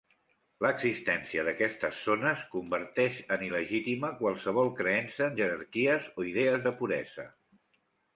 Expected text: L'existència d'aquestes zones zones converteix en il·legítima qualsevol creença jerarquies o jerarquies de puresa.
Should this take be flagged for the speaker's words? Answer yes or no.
yes